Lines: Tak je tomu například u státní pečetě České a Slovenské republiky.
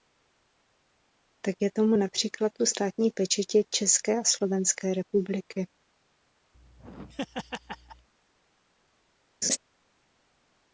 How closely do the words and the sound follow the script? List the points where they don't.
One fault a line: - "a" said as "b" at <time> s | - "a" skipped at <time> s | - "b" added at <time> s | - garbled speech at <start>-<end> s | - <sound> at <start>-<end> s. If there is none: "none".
- laugh at 6.5-8.1 s
- laugh at 9.4-9.6 s